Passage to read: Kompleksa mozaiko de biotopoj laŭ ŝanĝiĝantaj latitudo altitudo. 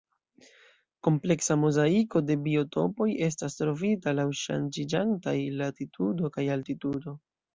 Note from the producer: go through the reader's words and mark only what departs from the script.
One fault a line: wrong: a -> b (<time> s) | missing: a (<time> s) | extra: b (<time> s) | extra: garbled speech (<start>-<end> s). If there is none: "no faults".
extra: estas trovita (3.3 s)
extra: kaj (6.4 s)